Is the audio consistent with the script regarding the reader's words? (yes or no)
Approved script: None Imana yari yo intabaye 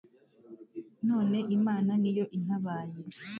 no